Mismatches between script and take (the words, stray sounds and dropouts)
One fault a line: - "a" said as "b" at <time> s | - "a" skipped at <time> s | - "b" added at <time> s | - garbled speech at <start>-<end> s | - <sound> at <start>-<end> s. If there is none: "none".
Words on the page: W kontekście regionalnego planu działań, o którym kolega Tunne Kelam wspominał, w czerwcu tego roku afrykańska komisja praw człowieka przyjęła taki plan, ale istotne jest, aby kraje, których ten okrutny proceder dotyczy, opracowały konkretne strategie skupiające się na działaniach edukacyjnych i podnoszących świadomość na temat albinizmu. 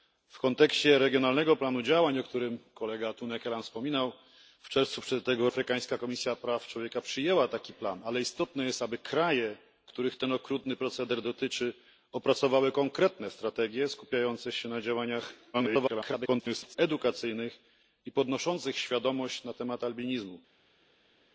- "roku" skipped at 5.5 s
- garbled speech at 15.5-16.8 s